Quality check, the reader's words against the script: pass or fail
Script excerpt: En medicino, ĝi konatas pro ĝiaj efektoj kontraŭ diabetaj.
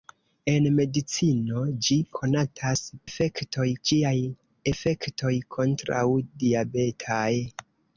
fail